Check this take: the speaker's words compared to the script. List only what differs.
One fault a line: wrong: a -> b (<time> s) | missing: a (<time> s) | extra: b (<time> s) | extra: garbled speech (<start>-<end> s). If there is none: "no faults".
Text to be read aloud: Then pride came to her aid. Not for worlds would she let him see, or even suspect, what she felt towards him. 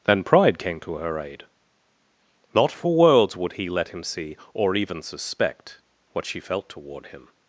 wrong: she -> he (3.5 s)
wrong: towards -> toward (6.7 s)